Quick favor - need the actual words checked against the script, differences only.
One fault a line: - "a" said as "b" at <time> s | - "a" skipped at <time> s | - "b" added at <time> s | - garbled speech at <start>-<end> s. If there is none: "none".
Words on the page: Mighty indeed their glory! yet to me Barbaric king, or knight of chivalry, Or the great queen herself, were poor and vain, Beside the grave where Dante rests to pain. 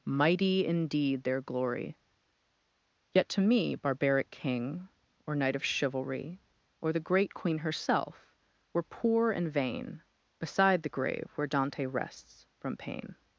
- "to" said as "from" at 12.6 s